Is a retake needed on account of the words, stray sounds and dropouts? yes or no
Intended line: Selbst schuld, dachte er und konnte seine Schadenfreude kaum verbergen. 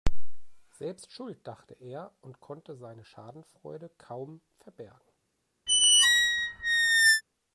yes